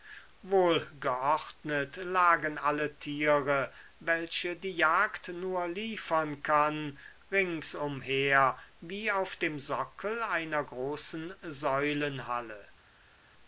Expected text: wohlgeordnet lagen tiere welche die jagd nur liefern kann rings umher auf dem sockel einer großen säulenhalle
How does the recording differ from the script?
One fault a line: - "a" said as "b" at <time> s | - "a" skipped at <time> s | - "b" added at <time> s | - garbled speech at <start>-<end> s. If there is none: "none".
- "alle" added at 2.6 s
- "wie" added at 8.8 s